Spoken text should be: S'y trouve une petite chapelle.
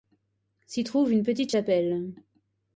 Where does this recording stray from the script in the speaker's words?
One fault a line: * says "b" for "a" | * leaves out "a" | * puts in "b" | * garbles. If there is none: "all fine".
all fine